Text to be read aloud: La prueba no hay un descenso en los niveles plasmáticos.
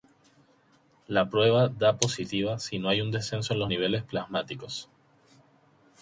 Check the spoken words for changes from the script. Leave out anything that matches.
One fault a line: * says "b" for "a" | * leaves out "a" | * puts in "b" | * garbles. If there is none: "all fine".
* puts in "da positiva si"